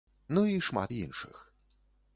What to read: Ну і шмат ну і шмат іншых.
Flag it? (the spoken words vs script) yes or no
yes